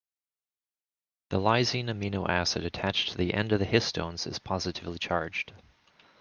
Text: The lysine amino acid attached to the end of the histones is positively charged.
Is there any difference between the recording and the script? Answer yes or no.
no